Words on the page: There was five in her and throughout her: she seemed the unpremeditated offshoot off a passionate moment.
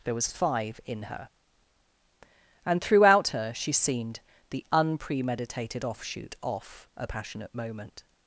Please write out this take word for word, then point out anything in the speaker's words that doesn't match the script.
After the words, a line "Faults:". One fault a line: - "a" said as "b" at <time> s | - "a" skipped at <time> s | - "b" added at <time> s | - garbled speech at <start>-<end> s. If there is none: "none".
There was five in her and throughout her: she seemed the unpremeditated offshoot off a passionate moment.
Faults:
none